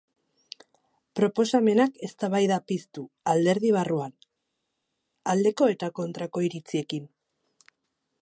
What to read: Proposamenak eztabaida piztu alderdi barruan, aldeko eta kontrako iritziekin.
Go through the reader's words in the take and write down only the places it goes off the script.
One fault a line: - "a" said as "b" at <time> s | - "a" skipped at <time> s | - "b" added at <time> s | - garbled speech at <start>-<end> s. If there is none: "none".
none